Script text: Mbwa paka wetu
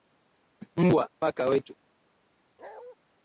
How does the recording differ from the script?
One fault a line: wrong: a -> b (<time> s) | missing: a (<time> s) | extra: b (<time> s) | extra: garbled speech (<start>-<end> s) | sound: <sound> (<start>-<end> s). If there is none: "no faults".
sound: bark (2.6-3.0 s)